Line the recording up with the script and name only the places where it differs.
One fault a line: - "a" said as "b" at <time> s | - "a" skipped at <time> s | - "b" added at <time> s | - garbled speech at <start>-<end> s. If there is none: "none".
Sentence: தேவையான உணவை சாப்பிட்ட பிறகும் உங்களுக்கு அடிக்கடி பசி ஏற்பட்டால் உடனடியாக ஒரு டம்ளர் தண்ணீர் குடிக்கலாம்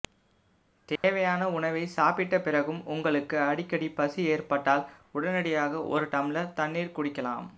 none